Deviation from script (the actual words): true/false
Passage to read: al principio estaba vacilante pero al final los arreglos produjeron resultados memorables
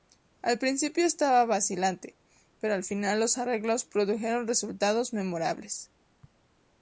false